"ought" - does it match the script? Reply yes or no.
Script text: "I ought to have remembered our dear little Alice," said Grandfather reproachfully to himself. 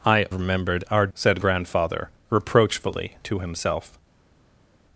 no